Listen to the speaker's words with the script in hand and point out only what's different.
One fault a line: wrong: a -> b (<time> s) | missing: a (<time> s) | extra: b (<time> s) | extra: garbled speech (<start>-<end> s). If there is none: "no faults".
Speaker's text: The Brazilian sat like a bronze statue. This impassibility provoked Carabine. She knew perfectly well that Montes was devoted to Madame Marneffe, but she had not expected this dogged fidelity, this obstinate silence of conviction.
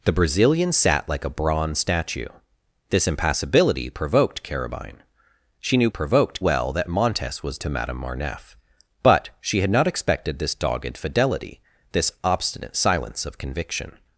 wrong: perfectly -> provoked (5.9 s)
missing: devoted (7.6 s)